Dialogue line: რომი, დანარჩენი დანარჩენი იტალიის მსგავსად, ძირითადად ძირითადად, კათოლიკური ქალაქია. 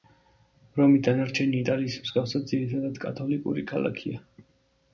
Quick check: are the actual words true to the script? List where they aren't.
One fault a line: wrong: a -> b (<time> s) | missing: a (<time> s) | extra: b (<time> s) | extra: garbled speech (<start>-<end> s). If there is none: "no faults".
missing: დანარჩენი (1.6 s)
missing: ძირითადად (3.0 s)